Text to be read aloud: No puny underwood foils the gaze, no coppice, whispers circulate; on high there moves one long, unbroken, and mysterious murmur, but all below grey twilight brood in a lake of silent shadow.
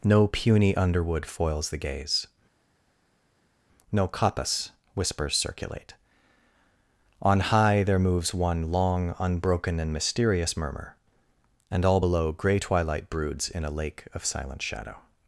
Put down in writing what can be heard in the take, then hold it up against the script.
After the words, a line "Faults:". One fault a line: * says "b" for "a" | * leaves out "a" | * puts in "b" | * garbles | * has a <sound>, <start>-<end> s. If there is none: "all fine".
No puny underwood foils the gaze, no coppice, whispers circulate; on high there moves one long, unbroken, and mysterious murmur, and all below grey twilight broods in a lake of silent shadow.
Faults:
* says "and" for "but"
* says "broods" for "brood"